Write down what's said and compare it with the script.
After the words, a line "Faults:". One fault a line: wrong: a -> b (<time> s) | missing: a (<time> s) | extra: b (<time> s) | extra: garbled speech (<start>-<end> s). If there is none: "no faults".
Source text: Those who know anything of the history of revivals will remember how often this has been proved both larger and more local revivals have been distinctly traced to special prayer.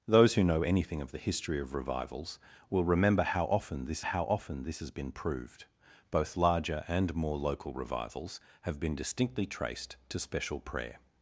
Those who know anything of the history of revivals will remember how often this how often this has been proved both larger and more local revivals have been distinctly traced to special prayer.
Faults:
extra: how often this (4.0 s)